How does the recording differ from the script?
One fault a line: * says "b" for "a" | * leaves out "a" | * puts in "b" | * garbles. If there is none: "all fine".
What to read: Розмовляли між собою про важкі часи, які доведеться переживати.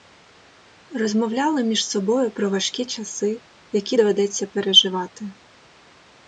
all fine